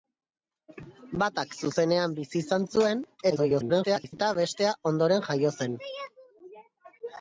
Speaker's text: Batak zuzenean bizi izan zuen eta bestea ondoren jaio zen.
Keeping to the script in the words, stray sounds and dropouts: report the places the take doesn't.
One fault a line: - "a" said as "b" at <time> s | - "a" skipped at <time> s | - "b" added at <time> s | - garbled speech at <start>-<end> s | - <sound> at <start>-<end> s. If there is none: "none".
- garbled speech at 3.3-4.1 s